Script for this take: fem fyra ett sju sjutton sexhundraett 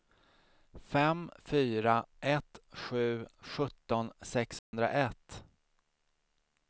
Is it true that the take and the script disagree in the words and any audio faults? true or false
true